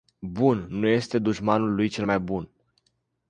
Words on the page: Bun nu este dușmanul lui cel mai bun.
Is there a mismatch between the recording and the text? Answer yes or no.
no